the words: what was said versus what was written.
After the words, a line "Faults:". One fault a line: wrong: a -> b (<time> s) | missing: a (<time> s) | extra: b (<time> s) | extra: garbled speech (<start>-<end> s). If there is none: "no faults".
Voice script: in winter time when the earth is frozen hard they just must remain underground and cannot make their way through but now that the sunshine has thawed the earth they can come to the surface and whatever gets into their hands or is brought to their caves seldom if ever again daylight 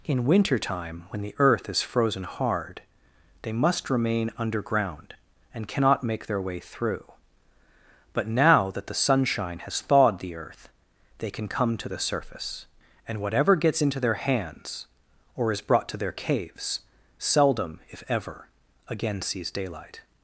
in winter time when the earth is frozen hard they must remain underground and cannot make their way through but now that the sunshine has thawed the earth they can come to the surface and whatever gets into their hands or is brought to their caves seldom if ever again sees daylight
Faults:
missing: just (3.5 s)
extra: sees (19.2 s)